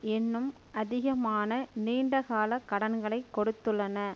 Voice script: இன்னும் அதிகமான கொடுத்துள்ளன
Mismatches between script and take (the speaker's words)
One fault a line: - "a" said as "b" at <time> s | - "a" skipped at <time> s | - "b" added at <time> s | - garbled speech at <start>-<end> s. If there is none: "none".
- "நீண்ட கால கடன்களை" added at 1.8 s